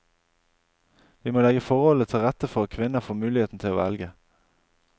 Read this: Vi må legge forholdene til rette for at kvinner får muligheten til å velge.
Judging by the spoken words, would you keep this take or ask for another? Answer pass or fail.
pass